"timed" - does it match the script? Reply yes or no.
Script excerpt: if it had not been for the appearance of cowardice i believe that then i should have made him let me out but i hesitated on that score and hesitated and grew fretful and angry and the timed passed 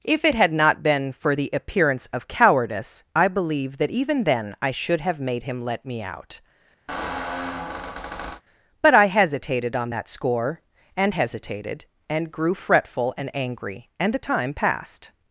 no